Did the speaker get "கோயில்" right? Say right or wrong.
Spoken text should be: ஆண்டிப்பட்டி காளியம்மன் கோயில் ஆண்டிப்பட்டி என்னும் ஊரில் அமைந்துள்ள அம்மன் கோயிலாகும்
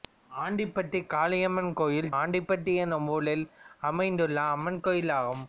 right